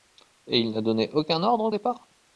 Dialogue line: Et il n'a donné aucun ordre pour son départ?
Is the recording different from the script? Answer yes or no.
yes